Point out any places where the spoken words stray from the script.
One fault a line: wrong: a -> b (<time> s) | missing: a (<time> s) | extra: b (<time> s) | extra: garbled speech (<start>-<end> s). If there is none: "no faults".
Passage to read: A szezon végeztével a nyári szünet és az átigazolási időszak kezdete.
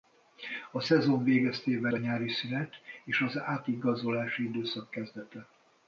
no faults